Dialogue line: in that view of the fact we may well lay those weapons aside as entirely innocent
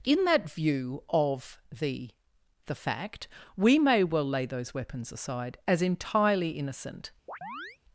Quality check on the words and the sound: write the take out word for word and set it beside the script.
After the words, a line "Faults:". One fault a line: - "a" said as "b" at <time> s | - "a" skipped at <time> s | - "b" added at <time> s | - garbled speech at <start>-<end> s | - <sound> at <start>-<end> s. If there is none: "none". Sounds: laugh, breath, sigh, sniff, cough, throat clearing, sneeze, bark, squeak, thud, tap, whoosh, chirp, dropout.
in that view of the the fact we may well lay those weapons aside as entirely innocent
Faults:
- "the" added at 2.7 s
- chirp at 7.3-7.8 s